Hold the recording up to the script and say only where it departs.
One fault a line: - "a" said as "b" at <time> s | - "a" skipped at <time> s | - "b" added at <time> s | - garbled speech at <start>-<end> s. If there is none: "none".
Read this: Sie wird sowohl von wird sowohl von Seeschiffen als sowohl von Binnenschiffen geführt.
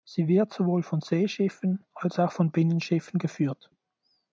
- "wird sowohl von" skipped at 1.0 s
- "sowohl" said as "auch" at 2.2 s